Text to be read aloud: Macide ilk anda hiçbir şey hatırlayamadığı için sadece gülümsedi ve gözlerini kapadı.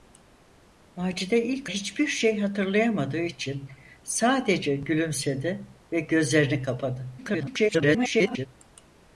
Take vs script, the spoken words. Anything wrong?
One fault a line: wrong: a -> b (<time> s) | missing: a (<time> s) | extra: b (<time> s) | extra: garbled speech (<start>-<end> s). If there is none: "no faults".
missing: anda (1.7 s)
extra: garbled speech (7.2-8.5 s)